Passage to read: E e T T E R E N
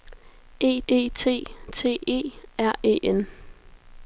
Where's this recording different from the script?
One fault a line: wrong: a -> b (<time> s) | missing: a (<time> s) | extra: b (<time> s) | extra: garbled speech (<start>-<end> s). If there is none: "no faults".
no faults